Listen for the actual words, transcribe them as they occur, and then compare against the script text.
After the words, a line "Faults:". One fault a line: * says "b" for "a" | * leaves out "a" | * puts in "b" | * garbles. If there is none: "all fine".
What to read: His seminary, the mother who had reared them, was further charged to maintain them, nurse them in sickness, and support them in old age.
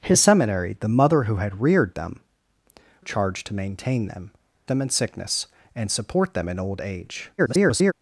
His seminary, the mother who had reared them, charged to maintain them, them in sickness, and support them in old age. [garbled]
Faults:
* leaves out "was further"
* leaves out "nurse"
* garbles